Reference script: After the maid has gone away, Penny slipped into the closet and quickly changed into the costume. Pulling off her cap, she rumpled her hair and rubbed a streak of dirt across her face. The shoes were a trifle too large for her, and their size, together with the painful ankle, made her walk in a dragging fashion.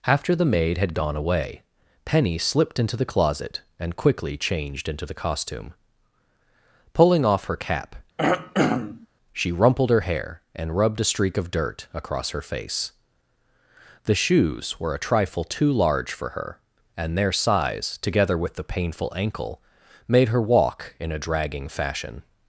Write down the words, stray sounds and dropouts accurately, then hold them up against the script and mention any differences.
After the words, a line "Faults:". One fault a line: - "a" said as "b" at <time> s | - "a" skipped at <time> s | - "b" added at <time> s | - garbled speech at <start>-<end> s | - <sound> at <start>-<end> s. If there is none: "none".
After the maid had gone away, Penny slipped into the closet and quickly changed into the costume. Pulling off her cap, she rumpled her hair and rubbed a streak of dirt across her face. The shoes were a trifle too large for her, and their size, together with the painful ankle, made her walk in a dragging fashion.
Faults:
- "has" said as "had" at 0.8 s
- throat clearing at 8.2-9.1 s